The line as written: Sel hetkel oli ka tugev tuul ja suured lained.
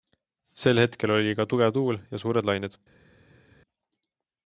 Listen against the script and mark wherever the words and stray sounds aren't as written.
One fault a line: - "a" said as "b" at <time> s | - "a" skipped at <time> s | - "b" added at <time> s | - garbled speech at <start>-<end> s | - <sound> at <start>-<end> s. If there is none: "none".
none